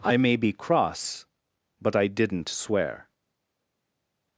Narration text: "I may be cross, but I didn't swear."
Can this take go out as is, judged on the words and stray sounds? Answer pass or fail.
pass